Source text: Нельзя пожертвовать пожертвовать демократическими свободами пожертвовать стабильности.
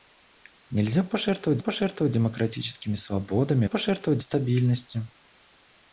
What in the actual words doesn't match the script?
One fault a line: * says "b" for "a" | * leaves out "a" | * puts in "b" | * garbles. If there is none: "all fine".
all fine